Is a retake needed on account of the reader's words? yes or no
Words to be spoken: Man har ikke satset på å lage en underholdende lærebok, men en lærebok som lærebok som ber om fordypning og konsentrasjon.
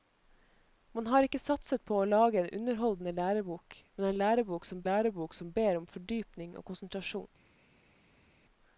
no